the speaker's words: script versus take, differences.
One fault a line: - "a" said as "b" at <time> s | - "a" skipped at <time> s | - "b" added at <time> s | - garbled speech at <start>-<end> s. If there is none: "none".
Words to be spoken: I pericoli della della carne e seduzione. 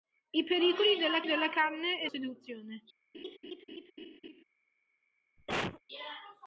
none